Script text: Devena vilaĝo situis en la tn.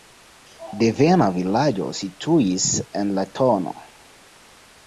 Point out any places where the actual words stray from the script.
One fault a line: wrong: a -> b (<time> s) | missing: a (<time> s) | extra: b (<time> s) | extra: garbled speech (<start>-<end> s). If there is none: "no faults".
no faults